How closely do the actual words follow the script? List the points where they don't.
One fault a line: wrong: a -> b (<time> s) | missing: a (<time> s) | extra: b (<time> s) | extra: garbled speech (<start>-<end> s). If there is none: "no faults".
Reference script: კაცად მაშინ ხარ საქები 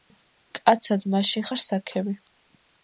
no faults